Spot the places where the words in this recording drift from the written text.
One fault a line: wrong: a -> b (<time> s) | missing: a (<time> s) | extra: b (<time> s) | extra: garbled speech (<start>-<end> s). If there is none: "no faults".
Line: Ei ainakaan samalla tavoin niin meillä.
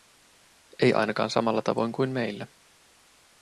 wrong: niin -> kuin (1.9 s)